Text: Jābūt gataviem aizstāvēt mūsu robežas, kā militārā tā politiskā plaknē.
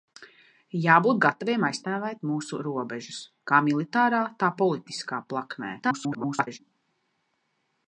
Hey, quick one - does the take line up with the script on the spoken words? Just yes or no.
no